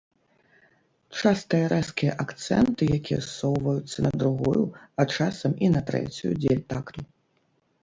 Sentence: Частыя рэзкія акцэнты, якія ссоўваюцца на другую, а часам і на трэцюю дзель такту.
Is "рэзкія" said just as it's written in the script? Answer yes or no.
yes